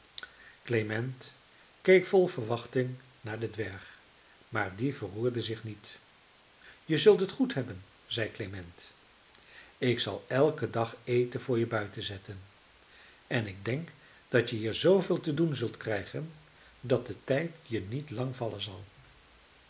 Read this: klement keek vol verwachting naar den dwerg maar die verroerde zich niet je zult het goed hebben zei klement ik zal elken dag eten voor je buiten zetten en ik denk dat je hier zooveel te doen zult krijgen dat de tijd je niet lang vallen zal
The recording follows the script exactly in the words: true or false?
true